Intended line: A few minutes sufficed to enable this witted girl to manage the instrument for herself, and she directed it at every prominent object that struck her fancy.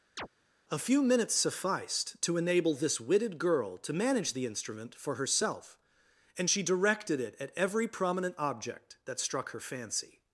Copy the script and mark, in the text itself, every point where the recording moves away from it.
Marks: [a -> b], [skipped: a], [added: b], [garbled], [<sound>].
[chirp] A few minutes sufficed to enable this witted girl to manage the instrument for herself, and she directed it at every prominent object that struck her fancy.